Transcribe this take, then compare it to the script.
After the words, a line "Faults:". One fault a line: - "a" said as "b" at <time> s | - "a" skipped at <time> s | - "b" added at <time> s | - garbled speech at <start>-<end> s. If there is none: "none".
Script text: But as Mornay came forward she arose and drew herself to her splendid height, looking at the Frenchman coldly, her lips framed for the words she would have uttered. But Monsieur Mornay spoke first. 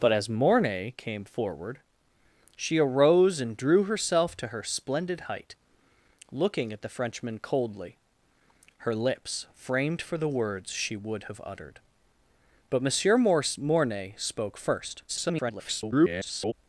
But as Mornay came forward she arose and drew herself to her splendid height, looking at the Frenchman coldly, her lips framed for the words she would have uttered. But Monsieur Mornay spoke first. [garbled]
Faults:
- garbled speech at 15.1-16.5 s